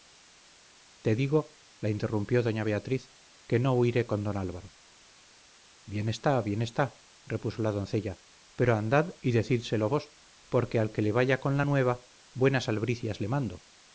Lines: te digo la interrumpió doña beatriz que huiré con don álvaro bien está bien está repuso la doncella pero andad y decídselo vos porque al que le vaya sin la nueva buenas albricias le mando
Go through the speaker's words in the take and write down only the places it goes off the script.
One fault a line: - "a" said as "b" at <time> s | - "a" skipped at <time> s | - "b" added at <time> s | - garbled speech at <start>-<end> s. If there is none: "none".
- "no" added at 3.6 s
- "sin" said as "con" at 11.4 s